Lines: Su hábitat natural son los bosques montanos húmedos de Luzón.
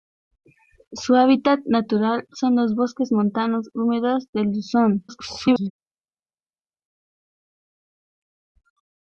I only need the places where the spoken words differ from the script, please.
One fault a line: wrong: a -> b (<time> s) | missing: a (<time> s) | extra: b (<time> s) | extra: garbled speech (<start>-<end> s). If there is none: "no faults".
extra: garbled speech (5.1-5.7 s)